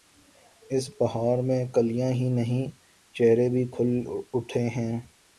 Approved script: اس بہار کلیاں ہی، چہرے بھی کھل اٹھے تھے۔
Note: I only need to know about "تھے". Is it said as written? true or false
false